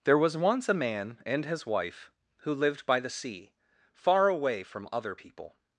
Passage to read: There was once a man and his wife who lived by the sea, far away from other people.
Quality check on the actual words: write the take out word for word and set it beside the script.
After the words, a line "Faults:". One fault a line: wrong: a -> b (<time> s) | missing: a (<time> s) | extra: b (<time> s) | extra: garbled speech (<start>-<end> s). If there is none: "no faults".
There was once a man and his wife who lived by the sea, far away from other people.
Faults:
no faults